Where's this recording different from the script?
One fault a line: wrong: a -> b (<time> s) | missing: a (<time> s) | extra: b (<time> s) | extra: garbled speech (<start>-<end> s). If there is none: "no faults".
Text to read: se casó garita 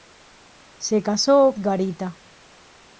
no faults